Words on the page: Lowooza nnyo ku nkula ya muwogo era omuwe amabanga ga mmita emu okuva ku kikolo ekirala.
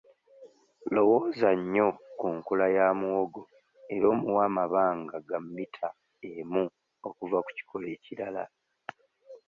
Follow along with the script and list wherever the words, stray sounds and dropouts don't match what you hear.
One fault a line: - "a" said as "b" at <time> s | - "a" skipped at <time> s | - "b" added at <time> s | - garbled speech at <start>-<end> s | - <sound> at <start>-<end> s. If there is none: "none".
none